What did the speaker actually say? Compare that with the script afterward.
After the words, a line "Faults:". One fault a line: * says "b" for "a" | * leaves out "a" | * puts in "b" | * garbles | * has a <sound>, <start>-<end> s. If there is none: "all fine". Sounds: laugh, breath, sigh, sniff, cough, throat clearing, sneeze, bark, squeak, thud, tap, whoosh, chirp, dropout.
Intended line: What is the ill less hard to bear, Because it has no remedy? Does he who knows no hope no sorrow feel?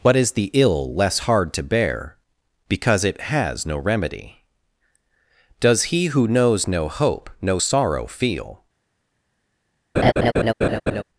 What is the ill less hard to bear, Because it has no remedy? Does he who knows no hope no sorrow feel?
Faults:
* has a laugh, 10.0-11.0 s